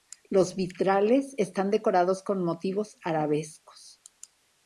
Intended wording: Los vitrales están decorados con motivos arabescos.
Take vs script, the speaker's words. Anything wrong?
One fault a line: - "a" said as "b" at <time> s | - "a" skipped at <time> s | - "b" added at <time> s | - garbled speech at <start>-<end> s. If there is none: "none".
none